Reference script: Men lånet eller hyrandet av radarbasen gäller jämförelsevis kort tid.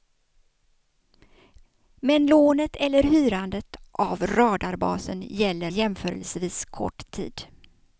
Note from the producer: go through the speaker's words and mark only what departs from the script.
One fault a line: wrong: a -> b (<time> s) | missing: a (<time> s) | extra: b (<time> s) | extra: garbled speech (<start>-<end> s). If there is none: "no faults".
no faults